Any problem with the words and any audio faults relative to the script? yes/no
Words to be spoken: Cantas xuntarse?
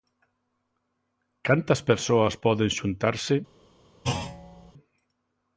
yes